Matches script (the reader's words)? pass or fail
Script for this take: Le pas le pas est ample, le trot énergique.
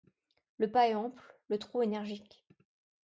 fail